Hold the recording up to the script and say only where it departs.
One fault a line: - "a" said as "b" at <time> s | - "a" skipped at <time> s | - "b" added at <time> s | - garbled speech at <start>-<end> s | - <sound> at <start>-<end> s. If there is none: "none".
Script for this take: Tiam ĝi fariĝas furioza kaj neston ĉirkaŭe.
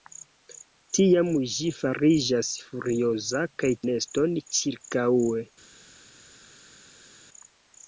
none